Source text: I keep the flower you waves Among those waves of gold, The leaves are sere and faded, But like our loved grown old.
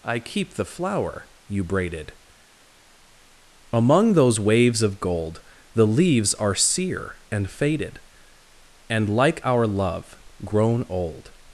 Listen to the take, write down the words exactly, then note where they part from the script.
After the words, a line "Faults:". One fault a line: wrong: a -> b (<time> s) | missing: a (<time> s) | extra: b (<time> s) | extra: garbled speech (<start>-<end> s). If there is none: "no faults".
I keep the flower you braided Among those waves of gold, The leaves are sere and faded, And like our love grown old.
Faults:
wrong: waves -> braided (1.6 s)
wrong: But -> And (8.9 s)
wrong: loved -> love (9.7 s)